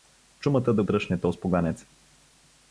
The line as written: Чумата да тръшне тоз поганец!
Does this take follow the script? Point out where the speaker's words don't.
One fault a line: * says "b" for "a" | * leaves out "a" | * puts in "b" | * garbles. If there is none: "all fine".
all fine